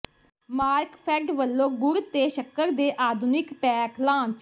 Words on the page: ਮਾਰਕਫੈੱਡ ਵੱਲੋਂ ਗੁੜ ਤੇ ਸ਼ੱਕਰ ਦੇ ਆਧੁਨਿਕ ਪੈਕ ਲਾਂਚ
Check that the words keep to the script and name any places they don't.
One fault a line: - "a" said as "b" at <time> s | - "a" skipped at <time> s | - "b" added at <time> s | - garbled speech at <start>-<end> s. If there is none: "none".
none